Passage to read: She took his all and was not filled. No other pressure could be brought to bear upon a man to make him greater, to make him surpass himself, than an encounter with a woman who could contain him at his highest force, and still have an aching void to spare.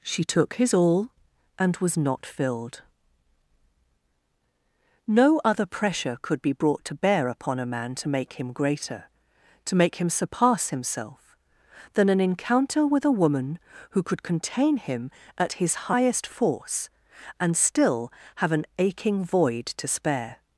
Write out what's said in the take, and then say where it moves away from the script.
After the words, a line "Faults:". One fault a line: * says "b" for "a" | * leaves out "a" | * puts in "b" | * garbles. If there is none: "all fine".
She took his all and was not filled. No other pressure could be brought to bear upon a man to make him greater, to make him surpass himself, than an encounter with a woman who could contain him at his highest force, and still have an aching void to spare.
Faults:
all fine